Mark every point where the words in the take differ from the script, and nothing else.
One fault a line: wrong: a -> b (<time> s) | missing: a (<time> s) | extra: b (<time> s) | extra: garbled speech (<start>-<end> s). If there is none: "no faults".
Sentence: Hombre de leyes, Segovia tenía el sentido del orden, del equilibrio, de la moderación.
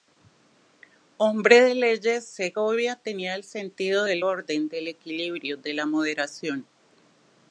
no faults